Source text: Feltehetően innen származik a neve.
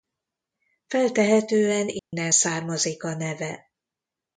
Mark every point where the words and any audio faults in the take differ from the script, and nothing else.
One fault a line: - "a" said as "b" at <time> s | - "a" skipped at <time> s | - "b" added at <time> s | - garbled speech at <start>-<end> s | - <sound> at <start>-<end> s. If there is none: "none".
- dropout at 2.0-2.1 s